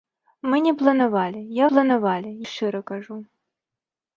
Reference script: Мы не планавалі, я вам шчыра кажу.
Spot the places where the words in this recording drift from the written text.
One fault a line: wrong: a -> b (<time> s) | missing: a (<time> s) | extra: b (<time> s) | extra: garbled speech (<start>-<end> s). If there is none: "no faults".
wrong: вам -> планавалі (1.7 s)